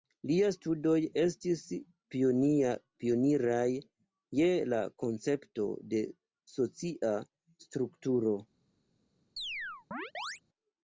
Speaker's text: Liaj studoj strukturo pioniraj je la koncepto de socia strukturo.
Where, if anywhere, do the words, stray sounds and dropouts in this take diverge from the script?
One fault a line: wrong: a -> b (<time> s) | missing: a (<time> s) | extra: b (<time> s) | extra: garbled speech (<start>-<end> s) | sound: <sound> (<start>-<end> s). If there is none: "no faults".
wrong: strukturo -> estis (1.2 s)
sound: chirp (9.4-10.4 s)